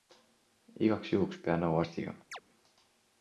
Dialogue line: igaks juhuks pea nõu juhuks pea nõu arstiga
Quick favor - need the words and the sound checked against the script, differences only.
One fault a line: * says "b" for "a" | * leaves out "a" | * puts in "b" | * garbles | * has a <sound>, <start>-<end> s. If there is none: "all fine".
* leaves out "juhuks pea nõu"
* has a chirp, 2.3-2.4 s